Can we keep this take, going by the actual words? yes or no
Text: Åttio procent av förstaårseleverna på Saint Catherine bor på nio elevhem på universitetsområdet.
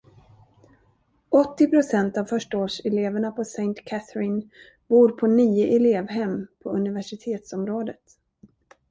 yes